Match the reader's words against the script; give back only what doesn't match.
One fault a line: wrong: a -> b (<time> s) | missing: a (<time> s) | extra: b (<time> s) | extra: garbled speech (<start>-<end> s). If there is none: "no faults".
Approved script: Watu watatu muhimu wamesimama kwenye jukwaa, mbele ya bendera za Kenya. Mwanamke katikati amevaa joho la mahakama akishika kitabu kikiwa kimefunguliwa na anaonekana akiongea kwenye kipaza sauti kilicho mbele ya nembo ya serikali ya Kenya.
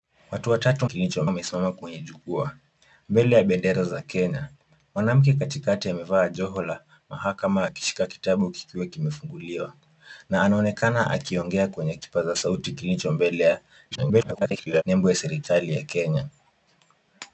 wrong: muhimu -> kilicho (0.8 s)
extra: garbled speech (13.9-14.8 s)